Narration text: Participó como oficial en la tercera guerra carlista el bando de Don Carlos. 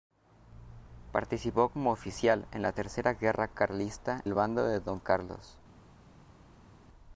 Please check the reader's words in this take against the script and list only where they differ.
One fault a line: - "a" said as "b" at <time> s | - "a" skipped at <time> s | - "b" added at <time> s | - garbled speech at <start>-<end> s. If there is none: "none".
none